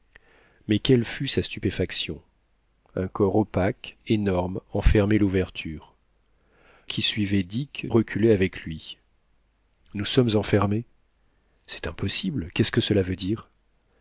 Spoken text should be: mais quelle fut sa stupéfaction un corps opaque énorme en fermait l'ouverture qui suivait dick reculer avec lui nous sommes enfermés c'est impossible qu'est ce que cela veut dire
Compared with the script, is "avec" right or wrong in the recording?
right